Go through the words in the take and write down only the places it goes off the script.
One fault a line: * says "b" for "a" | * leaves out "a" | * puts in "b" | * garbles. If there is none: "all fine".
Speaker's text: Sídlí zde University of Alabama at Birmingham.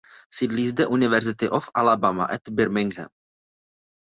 all fine